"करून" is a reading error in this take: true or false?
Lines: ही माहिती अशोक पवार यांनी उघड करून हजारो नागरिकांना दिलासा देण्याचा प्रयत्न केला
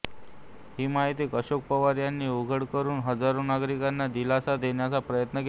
false